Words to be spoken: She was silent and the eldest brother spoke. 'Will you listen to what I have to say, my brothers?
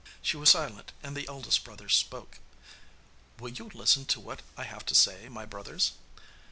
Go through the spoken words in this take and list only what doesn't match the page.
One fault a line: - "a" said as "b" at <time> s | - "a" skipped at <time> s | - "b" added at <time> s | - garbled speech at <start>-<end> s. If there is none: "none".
none